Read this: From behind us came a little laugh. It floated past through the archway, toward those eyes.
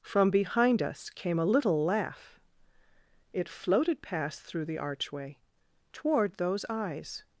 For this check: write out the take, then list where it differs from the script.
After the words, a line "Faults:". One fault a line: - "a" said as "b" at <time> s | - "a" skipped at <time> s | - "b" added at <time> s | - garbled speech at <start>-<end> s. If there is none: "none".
From behind us came a little laugh. It floated past through the archway, toward those eyes.
Faults:
none